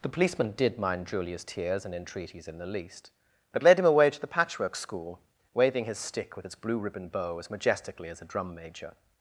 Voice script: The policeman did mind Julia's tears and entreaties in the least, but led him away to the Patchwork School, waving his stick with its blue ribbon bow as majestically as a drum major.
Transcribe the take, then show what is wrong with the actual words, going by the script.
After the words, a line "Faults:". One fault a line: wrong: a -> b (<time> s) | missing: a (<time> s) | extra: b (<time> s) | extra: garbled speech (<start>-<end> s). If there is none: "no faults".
The policeman did mind Julia's tears and entreaties in the least, but led him away to the Patchwork School, waving his stick with its blue ribbon bow as majestically as a drum major.
Faults:
no faults